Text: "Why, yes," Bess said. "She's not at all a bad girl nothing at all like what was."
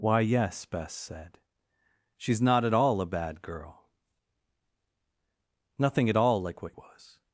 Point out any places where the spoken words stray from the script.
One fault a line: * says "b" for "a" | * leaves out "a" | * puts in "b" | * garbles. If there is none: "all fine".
all fine